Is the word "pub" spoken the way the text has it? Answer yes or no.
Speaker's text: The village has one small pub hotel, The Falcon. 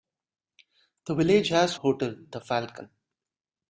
no